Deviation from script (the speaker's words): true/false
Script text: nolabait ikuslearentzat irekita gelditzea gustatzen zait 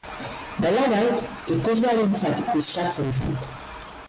true